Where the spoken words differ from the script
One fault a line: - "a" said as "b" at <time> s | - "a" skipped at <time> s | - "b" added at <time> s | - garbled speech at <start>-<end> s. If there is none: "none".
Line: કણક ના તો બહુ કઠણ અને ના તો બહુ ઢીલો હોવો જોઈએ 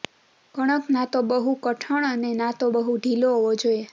none